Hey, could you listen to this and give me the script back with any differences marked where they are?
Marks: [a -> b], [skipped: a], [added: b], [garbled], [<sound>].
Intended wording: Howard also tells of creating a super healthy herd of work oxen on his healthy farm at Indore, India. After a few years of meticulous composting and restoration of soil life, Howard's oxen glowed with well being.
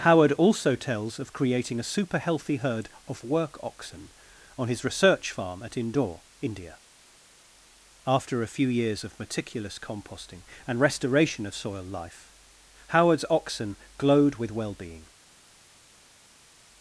Howard also tells of creating a super healthy herd of work oxen on his [healthy -> research] farm at Indore, India. After a few years of meticulous composting and restoration of soil life, Howard's oxen glowed with well being.